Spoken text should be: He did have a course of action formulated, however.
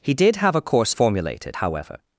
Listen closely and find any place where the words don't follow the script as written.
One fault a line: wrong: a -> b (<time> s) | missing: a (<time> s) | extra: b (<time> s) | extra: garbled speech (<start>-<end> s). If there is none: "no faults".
missing: of action (0.9 s)